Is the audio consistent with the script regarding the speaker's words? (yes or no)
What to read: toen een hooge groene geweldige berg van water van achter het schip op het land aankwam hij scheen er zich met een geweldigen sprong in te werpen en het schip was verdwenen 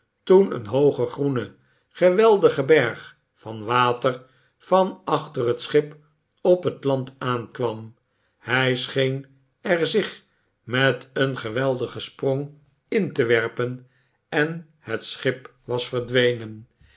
yes